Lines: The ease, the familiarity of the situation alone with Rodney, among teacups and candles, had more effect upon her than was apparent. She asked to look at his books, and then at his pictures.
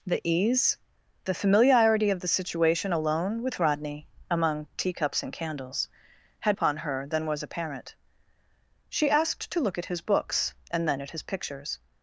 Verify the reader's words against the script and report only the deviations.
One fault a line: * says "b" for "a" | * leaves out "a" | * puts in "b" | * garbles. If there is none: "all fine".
* leaves out "more effect"